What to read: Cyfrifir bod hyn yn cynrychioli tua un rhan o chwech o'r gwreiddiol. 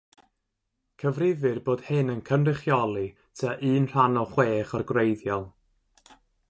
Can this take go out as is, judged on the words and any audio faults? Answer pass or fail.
pass